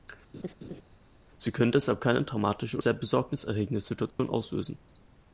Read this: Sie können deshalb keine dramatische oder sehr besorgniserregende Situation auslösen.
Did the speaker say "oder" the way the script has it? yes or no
no